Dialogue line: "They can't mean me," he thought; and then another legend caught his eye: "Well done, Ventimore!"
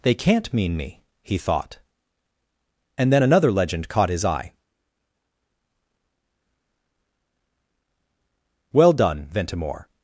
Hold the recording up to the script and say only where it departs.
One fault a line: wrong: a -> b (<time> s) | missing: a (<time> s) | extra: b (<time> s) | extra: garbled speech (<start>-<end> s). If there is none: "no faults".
no faults